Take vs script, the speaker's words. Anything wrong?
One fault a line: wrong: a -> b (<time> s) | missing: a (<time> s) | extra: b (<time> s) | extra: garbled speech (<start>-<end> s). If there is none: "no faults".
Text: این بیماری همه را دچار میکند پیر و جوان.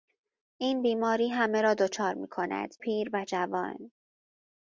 no faults